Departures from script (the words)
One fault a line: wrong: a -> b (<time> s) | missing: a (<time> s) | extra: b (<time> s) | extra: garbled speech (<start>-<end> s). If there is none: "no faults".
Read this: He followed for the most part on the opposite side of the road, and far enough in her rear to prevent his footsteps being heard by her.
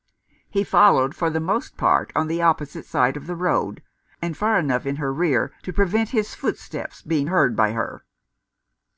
no faults